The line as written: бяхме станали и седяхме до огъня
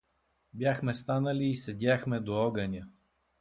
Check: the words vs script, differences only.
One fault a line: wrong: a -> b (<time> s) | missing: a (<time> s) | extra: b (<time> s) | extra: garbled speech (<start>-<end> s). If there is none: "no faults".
no faults